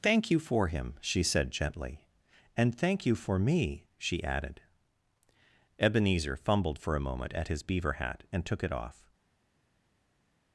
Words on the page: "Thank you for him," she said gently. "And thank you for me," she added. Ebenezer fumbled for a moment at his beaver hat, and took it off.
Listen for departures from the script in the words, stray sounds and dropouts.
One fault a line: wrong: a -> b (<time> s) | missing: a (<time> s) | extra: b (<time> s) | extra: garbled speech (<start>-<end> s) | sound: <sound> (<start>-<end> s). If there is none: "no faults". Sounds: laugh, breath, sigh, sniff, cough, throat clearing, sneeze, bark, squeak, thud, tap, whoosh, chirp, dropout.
no faults